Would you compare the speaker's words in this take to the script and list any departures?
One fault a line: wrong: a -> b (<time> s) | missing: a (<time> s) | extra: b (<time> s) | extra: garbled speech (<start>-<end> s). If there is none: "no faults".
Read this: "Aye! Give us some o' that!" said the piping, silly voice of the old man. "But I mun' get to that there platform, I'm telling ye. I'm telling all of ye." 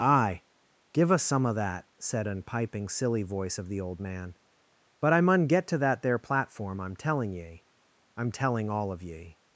wrong: the -> an (2.2 s)